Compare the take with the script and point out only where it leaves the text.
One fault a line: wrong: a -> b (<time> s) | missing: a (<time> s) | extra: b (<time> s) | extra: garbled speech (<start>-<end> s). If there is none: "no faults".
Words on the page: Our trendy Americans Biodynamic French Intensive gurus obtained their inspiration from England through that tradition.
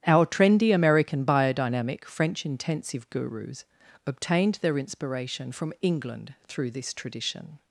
wrong: Americans -> American (0.7 s)
wrong: that -> this (6.7 s)